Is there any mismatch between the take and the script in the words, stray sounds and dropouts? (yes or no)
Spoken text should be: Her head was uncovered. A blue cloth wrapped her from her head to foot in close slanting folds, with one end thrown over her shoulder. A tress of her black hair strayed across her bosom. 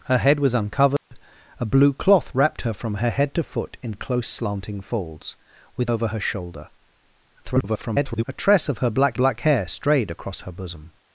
yes